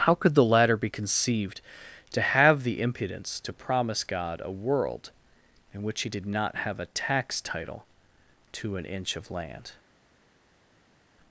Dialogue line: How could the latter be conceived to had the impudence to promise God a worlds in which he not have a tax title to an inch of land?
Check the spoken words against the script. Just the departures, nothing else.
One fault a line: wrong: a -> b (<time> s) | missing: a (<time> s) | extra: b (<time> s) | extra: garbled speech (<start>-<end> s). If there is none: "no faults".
wrong: had -> have (2.2 s)
wrong: worlds -> world (4.5 s)
extra: did (6.1 s)